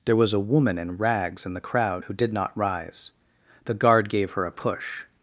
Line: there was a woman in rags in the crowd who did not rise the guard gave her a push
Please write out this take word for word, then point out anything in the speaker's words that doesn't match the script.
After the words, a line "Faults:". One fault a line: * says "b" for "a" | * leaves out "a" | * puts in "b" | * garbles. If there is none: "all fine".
there was a woman in rags in the crowd who did not rise the guard gave her a push
Faults:
all fine